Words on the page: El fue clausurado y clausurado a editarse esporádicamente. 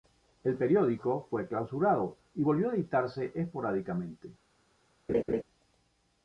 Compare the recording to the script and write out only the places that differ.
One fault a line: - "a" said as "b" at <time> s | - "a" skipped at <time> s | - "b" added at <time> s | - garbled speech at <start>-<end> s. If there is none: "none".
- "periódico" added at 0.6 s
- "clausurado" said as "volvió" at 2.4 s